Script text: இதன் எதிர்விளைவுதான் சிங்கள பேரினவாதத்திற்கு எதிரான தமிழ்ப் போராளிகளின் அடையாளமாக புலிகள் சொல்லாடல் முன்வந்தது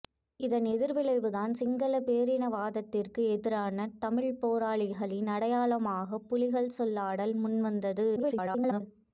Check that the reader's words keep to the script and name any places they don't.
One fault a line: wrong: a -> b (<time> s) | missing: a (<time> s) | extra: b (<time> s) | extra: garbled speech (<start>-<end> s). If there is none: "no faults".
extra: garbled speech (8.2-8.8 s)